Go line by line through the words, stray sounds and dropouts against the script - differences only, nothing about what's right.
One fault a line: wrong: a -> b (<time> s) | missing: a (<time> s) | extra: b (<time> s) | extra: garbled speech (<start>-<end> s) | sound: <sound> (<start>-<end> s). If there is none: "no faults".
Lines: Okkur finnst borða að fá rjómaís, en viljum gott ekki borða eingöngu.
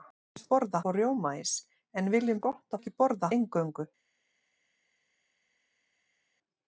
no faults